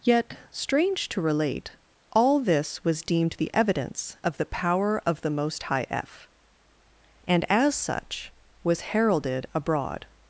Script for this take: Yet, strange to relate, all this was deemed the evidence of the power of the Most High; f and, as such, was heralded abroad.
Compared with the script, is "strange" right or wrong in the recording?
right